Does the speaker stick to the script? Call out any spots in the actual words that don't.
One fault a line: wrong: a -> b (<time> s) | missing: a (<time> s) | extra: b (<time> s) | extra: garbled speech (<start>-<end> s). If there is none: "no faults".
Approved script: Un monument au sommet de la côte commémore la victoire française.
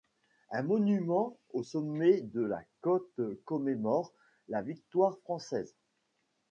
no faults